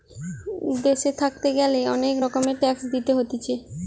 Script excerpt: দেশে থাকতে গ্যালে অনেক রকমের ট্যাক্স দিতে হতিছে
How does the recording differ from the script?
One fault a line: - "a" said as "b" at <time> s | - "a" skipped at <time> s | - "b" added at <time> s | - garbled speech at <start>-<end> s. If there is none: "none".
none